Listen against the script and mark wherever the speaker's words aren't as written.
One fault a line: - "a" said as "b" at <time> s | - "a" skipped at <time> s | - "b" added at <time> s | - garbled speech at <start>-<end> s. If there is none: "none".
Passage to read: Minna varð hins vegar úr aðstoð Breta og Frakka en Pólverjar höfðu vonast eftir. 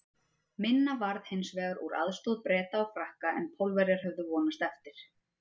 none